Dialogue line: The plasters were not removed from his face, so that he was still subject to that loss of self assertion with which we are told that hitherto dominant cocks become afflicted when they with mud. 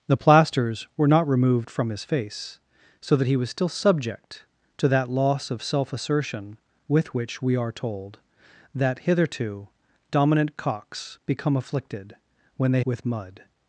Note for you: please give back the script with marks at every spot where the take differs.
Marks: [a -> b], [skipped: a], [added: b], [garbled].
The plasters were not removed from his face, so that he was still subject to that loss of self assertion with which we are told that hitherto dominant cocks become afflicted when they with mud.